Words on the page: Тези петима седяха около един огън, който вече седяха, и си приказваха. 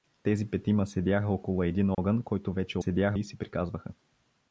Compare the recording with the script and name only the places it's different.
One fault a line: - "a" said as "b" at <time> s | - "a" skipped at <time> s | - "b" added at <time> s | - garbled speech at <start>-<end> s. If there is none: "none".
none